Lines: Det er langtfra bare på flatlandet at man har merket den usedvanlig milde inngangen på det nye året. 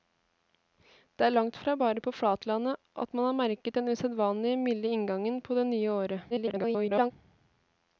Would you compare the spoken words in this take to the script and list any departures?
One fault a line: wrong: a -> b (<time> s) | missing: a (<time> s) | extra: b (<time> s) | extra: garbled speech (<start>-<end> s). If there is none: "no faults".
extra: garbled speech (6.3-7.1 s)